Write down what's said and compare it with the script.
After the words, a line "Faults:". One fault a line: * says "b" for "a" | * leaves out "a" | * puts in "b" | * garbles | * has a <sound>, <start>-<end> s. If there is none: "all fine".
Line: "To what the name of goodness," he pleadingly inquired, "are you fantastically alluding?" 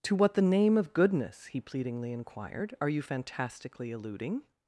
"To what the name of goodness," he pleadingly inquired, "are you fantastically alluding?"
Faults:
all fine